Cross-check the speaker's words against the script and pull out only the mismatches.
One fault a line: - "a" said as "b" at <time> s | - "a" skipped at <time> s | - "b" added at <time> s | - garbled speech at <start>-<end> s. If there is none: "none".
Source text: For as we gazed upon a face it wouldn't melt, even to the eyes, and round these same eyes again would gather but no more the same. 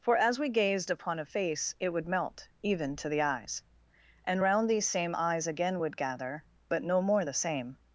- "wouldn't" said as "would" at 1.9 s